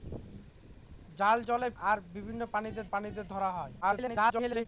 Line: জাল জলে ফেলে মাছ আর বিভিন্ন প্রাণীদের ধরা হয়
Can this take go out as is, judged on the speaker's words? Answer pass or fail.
fail